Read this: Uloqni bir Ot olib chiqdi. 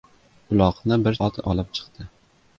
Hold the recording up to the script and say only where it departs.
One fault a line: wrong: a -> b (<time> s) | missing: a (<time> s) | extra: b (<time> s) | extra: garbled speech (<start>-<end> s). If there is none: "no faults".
no faults